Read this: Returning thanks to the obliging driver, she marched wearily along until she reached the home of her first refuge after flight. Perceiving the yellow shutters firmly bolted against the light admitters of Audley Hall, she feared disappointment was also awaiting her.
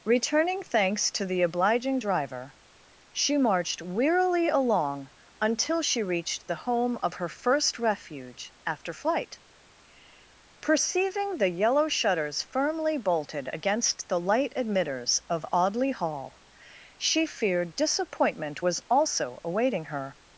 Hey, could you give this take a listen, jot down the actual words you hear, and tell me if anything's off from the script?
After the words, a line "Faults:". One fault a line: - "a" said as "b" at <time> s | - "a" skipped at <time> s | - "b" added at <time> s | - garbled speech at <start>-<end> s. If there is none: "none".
Returning thanks to the obliging driver, she marched wearily along until she reached the home of her first refuge after flight. Perceiving the yellow shutters firmly bolted against the light admitters of Audley Hall, she feared disappointment was also awaiting her.
Faults:
none